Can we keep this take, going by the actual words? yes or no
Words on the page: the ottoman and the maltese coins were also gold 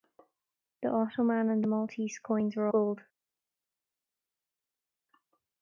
no